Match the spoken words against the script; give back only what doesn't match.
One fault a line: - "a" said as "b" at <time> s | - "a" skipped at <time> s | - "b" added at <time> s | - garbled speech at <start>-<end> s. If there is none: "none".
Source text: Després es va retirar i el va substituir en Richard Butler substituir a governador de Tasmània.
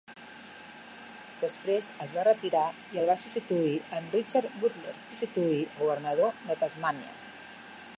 none